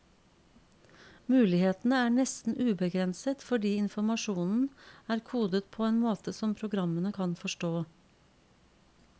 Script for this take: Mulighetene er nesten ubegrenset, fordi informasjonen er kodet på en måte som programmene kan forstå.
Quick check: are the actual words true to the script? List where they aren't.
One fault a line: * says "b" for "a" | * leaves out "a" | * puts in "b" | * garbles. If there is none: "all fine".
all fine